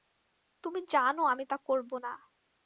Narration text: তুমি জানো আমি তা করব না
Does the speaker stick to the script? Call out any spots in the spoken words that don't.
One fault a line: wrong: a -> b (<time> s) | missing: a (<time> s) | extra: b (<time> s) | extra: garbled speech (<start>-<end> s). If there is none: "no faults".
no faults